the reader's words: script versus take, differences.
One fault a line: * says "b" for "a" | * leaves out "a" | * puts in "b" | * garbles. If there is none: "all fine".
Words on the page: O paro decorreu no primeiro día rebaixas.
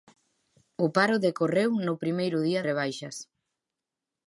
all fine